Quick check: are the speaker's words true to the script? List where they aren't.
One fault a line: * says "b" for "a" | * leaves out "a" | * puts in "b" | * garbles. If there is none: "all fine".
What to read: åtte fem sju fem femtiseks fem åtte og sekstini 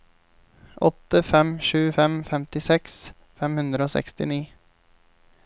* says "hundre" for "åtte"